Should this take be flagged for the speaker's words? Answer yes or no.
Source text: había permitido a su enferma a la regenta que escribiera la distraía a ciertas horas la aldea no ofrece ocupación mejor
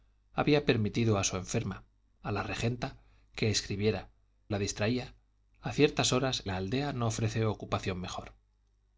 no